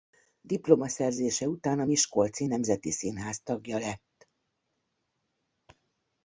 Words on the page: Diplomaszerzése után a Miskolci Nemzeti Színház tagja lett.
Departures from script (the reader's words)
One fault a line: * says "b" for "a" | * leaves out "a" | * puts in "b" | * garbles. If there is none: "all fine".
all fine